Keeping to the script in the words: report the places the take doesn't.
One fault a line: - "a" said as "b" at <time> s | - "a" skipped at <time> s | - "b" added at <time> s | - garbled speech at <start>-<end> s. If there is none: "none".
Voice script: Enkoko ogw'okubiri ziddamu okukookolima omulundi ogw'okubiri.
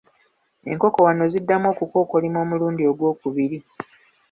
- "ogw'okubiri" said as "wano" at 1.1 s